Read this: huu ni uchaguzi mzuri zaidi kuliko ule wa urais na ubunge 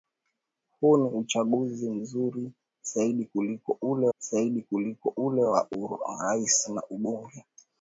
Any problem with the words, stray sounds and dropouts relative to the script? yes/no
yes